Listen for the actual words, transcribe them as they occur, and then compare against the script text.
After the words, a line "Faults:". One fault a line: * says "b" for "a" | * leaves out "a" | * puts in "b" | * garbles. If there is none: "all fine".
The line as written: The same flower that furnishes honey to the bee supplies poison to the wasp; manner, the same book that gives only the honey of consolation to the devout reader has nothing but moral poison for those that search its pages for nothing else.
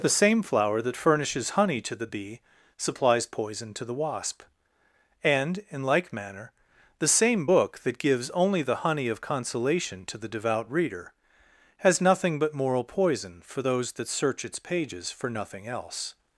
The same flower that furnishes honey to the bee supplies poison to the wasp; and, in like manner, the same book that gives only the honey of consolation to the devout reader has nothing but moral poison for those that search its pages for nothing else.
Faults:
* puts in "and in like"